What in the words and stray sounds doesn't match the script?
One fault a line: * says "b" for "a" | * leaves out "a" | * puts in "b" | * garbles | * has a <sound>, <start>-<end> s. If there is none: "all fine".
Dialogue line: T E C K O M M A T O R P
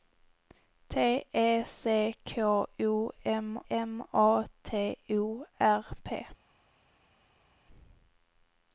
all fine